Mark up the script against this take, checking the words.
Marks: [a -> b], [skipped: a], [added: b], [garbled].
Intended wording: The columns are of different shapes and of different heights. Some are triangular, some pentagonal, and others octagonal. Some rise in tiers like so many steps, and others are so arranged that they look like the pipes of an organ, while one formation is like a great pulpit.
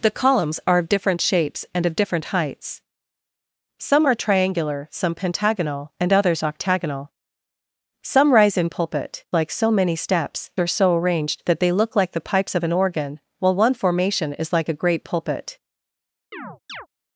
The columns are of different shapes and of different heights. Some are triangular, some pentagonal, and others octagonal. Some rise in [tiers -> pulpit] like so many steps, [skipped: and others] are so arranged that they look like the pipes of an organ, while one formation is like a great pulpit.